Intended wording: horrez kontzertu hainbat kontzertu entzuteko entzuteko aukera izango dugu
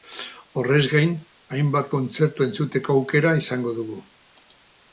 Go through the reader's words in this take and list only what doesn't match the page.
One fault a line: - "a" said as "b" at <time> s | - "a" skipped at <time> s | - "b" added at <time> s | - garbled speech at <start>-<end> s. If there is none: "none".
- "kontzertu" said as "gain" at 0.9 s
- "entzuteko" skipped at 3.0 s